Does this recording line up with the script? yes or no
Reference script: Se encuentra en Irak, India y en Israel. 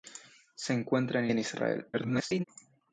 no